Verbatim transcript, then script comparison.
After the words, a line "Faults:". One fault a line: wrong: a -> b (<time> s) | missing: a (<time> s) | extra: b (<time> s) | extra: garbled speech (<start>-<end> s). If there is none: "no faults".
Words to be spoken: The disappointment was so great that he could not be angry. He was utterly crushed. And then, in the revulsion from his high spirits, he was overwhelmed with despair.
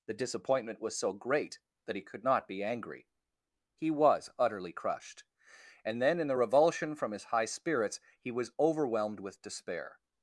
The disappointment was so great that he could not be angry. He was utterly crushed. And then, in the revulsion from his high spirits, he was overwhelmed with despair.
Faults:
no faults